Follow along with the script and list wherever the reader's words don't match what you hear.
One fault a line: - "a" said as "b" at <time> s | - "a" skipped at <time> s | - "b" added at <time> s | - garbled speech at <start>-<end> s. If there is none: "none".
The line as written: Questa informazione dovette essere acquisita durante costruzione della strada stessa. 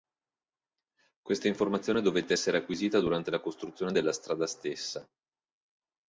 - "la" added at 3.3 s